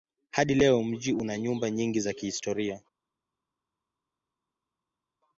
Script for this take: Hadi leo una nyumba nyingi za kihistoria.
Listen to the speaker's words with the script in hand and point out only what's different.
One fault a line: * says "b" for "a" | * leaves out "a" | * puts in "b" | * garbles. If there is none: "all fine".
* puts in "mji"